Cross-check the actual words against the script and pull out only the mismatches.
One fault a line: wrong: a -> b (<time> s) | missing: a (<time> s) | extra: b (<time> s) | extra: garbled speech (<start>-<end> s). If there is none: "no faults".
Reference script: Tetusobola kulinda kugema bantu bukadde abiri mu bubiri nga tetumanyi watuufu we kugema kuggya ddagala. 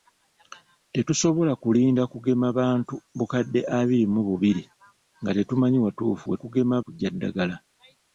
no faults